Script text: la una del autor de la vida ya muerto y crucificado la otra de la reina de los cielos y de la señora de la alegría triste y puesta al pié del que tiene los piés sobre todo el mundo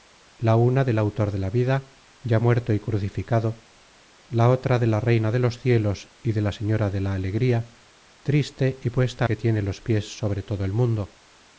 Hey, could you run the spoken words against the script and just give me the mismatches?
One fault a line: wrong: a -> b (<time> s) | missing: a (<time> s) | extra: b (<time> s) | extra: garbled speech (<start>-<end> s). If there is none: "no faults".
missing: al pié del (9.3 s)